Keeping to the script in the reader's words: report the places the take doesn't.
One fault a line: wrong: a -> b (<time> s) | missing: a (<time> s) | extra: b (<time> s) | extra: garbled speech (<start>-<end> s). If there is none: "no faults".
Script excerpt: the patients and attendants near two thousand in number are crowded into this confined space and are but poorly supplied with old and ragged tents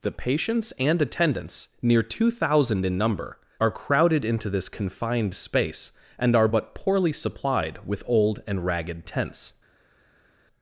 no faults